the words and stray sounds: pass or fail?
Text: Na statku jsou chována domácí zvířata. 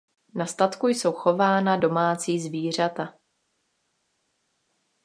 pass